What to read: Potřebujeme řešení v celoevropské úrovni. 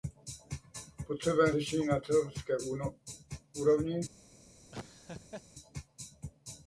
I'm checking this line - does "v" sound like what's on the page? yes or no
no